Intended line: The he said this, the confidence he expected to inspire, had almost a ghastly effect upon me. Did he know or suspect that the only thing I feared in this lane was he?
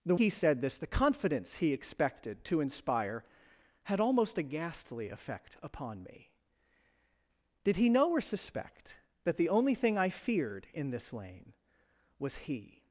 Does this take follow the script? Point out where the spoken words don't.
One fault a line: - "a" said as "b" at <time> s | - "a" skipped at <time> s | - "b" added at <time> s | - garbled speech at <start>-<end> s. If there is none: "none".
none